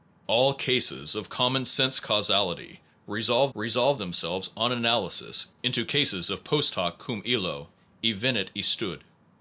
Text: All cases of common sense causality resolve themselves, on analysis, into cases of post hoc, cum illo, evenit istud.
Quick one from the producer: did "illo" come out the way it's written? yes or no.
yes